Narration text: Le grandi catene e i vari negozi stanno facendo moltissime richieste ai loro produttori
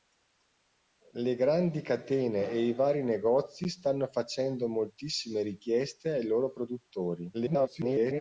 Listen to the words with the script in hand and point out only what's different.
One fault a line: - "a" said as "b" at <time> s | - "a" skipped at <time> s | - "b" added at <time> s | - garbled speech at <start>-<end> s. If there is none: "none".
- garbled speech at 7.3-8.2 s